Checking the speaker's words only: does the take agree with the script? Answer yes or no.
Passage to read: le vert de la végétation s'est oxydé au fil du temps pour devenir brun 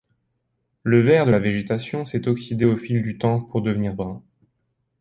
yes